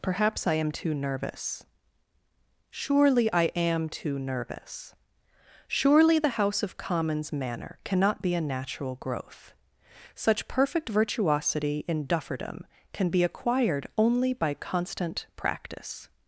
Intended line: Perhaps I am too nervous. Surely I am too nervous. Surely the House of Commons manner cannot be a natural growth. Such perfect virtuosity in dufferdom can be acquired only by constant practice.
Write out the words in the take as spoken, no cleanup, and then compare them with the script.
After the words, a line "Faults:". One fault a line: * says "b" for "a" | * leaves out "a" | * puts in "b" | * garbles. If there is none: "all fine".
Perhaps I am too nervous. Surely I am too nervous. Surely the House of Commons manner cannot be a natural growth. Such perfect virtuosity in dufferdom can be acquired only by constant practice.
Faults:
all fine